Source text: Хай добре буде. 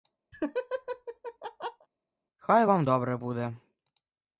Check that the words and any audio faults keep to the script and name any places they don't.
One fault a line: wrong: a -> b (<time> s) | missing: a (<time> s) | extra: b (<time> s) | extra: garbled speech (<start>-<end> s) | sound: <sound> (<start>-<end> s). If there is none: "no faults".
sound: laugh (0.3-1.9 s)
extra: вам (2.6 s)